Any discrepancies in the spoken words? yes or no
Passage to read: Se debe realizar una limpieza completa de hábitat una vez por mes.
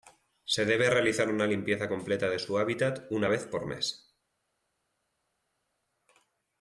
yes